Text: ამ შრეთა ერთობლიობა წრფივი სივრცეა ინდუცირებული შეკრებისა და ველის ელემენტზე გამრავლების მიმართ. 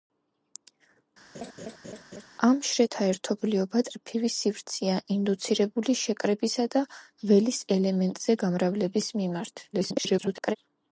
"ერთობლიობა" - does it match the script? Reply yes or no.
yes